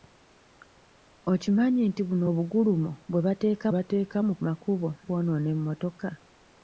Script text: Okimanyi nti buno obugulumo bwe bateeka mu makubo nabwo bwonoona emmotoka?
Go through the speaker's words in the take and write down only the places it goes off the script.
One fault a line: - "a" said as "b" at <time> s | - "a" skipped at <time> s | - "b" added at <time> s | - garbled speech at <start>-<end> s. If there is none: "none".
- "bateeka" added at 3.7 s
- "nabwo" skipped at 4.9 s